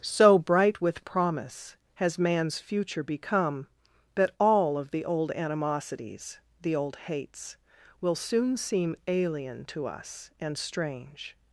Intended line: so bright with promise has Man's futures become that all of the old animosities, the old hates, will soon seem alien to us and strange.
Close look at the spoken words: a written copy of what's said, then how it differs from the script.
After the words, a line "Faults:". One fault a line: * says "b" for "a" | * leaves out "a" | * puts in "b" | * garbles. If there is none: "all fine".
so bright with promise has Man's future become that all of the old animosities, the old hates, will soon seem alien to us and strange.
Faults:
* says "future" for "futures"